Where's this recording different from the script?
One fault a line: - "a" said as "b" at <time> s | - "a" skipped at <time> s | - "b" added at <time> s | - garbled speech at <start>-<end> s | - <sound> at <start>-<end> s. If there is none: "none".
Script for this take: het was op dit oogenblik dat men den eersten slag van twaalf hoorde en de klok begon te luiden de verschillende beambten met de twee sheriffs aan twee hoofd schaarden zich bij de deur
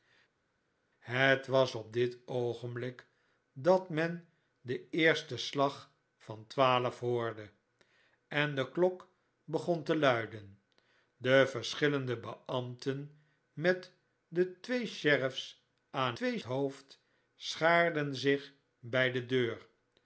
none